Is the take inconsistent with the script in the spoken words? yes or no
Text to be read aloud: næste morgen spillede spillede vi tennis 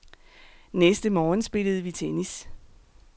yes